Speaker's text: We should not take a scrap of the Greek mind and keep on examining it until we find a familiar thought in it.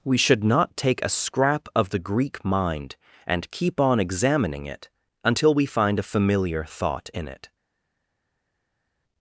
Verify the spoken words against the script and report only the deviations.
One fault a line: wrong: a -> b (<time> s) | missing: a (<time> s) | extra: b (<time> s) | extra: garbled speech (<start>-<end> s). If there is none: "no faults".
no faults